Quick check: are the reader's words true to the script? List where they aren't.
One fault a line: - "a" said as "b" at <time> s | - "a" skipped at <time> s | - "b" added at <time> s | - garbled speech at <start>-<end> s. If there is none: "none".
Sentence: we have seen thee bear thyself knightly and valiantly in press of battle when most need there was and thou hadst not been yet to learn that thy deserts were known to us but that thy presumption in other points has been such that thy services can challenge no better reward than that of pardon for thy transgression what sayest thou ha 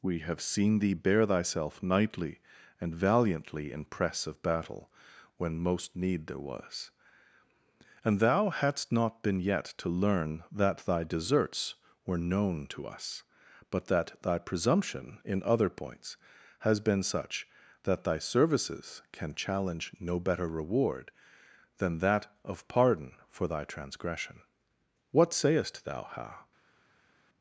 none